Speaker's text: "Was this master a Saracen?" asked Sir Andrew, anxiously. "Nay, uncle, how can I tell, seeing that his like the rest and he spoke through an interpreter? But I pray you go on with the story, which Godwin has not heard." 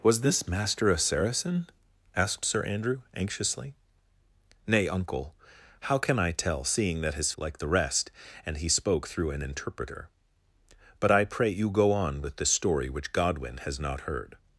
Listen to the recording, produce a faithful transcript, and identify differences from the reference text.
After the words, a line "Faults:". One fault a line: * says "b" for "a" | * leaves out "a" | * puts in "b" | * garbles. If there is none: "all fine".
"Was this master a Saracen?" asked Sir Andrew, anxiously. "Nay, uncle, how can I tell, seeing that his like the rest and he spoke through an interpreter? But I pray you go on with the story, which Godwin has not heard."
Faults:
all fine